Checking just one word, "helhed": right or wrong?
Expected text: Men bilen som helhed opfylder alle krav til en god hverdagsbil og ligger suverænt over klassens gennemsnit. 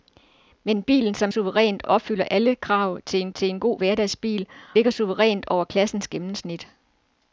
wrong